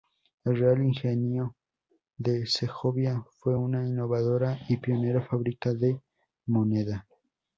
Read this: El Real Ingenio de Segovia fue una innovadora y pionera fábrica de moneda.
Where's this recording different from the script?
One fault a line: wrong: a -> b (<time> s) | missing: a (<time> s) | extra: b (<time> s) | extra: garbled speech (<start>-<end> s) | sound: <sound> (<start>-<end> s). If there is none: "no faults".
no faults